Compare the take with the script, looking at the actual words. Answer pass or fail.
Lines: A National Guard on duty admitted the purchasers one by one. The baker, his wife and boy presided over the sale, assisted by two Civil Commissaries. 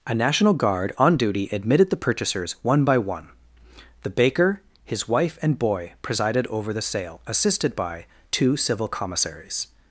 pass